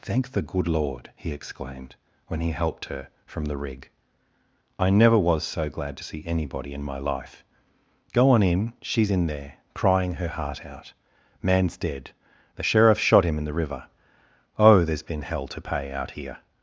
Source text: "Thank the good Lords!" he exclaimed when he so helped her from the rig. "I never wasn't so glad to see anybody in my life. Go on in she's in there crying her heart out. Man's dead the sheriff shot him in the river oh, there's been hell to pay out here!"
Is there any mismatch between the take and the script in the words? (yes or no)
yes